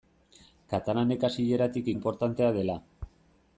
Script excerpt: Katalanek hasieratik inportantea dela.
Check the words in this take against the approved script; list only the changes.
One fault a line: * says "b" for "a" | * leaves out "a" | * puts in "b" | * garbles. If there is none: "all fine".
all fine